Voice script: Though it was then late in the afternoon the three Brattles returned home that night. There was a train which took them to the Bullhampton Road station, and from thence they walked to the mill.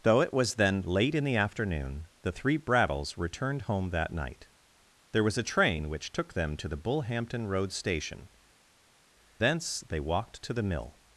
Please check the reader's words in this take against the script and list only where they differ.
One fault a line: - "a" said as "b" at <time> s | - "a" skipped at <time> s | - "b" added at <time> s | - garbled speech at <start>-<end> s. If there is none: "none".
- "and from" skipped at 8.3 s